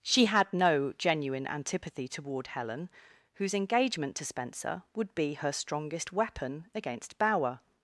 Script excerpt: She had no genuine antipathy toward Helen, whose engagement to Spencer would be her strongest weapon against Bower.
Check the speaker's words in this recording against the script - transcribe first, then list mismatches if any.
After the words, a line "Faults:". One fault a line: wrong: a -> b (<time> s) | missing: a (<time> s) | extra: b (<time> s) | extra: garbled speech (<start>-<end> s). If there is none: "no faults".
She had no genuine antipathy toward Helen, whose engagement to Spencer would be her strongest weapon against Bower.
Faults:
no faults